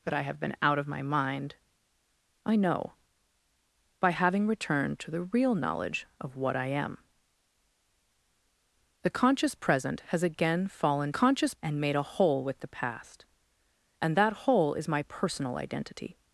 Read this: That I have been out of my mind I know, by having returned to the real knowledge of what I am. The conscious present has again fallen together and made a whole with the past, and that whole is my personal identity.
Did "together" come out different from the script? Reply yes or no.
yes